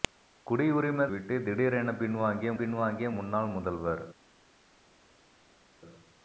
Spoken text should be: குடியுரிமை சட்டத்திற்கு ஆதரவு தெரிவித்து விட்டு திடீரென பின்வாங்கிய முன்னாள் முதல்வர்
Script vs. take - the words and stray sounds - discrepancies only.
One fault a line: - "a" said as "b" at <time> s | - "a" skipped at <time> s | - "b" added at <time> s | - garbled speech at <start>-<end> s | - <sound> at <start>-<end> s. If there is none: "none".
- "சட்டத்திற்கு ஆதரவு தெரிவித்து" skipped at 1.1 s
- "பின்வாங்கிய" added at 2.6 s